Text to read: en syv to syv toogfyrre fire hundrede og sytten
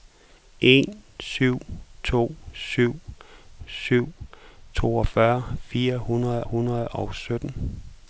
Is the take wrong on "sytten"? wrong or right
right